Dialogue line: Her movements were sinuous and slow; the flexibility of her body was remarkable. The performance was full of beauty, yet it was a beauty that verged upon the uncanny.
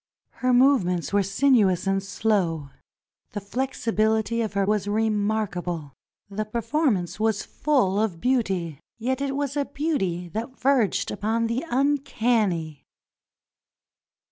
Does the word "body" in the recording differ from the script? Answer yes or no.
yes